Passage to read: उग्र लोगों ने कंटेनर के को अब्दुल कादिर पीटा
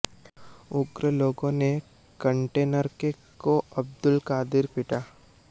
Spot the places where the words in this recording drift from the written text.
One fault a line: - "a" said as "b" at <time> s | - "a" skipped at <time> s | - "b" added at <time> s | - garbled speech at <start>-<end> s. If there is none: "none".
none